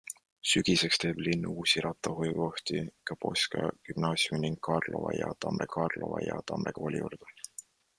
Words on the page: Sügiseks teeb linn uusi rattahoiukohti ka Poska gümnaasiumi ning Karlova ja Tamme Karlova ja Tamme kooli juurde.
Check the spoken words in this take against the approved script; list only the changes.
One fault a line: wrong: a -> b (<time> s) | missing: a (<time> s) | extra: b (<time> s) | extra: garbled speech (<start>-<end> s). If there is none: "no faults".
no faults